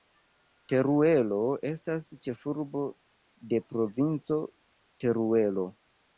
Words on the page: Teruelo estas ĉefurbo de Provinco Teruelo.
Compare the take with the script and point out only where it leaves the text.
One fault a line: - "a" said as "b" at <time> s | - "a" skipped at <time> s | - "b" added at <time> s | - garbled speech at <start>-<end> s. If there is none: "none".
none